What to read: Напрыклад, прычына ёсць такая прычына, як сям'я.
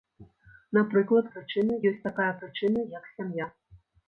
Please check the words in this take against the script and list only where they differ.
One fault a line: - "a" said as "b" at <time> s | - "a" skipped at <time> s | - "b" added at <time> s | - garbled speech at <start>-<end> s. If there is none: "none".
none